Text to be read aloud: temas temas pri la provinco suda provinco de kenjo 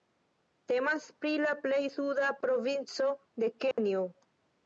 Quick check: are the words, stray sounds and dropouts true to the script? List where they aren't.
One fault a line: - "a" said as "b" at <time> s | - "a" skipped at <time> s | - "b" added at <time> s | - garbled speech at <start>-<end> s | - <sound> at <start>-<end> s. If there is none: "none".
- "temas" skipped at 1.0 s
- "provinco" said as "plej" at 1.6 s
- dropout at 3.7-3.8 s